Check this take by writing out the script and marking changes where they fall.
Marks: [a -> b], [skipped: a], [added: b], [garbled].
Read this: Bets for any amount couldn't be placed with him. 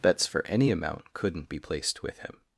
Bets for any amount couldn't be placed with him.